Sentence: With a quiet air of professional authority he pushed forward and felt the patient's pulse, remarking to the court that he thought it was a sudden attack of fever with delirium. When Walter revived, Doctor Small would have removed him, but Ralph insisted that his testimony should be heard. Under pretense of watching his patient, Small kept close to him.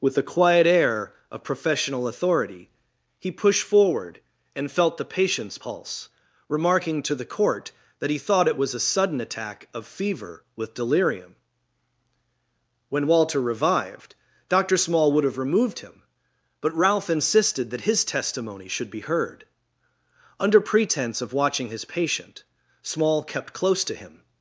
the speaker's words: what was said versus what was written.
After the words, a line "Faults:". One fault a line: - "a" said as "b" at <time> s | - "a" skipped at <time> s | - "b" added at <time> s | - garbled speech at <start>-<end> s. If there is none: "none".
With a quiet air of professional authority he pushed forward and felt the patient's pulse, remarking to the court that he thought it was a sudden attack of fever with delirium. When Walter revived, Doctor Small would have removed him, but Ralph insisted that his testimony should be heard. Under pretense of watching his patient, Small kept close to him.
Faults:
none